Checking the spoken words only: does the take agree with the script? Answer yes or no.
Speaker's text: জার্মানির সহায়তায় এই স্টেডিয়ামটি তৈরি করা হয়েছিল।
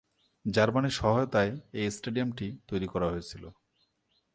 yes